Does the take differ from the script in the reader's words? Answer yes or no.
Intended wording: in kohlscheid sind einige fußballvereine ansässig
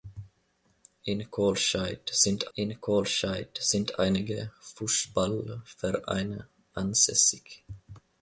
yes